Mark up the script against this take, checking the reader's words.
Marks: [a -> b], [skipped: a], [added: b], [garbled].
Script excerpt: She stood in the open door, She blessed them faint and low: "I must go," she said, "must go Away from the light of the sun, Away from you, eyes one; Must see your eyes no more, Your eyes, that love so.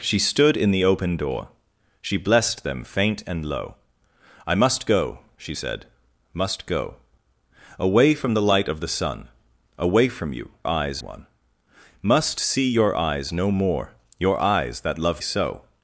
She stood in the open door, She blessed them faint and low: "I must go," she said, "must go Away from the light of the sun, Away from you, eyes one; Must see your eyes no more, Your eyes, that love so.